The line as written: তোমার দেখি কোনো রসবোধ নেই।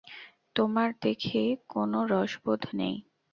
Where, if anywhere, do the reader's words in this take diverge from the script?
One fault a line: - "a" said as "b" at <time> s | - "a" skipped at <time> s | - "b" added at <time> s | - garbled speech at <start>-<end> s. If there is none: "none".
none